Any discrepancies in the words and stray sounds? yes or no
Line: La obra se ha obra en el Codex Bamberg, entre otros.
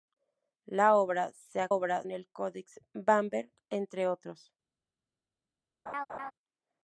yes